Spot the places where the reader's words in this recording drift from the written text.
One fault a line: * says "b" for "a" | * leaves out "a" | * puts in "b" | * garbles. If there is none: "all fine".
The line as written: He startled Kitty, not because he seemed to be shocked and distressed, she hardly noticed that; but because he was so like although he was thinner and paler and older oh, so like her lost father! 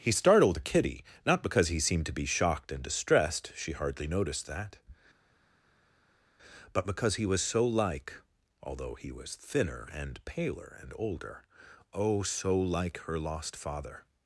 all fine